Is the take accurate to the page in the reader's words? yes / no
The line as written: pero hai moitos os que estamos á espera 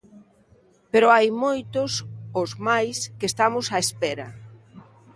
no